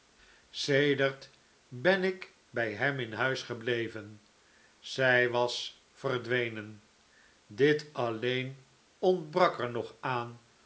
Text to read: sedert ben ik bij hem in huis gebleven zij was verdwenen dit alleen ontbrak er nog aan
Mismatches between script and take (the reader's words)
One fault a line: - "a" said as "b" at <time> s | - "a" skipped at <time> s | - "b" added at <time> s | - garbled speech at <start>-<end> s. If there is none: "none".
none